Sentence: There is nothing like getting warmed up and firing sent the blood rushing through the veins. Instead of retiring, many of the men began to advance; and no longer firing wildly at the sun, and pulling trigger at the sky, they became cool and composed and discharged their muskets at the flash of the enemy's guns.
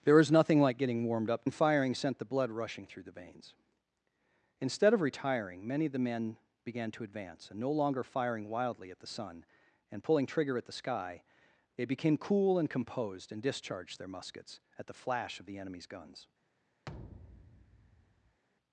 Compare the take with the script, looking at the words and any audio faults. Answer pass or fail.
fail